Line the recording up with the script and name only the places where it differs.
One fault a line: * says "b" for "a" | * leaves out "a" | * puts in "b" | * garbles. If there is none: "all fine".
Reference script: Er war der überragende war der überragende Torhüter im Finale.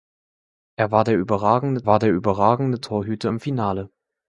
all fine